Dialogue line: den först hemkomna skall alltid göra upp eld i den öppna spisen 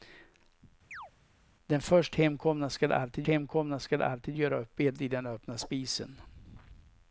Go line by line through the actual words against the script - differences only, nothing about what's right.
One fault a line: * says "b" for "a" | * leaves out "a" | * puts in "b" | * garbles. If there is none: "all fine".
* puts in "hemkomna skall alltid"